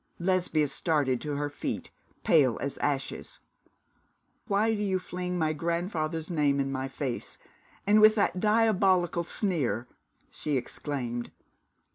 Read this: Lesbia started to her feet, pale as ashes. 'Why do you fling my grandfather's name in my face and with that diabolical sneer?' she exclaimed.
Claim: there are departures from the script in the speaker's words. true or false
false